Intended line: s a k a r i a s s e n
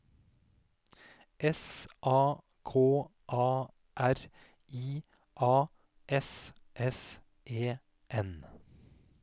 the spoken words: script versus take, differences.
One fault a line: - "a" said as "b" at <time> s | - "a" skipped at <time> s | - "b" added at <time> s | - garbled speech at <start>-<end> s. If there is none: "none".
none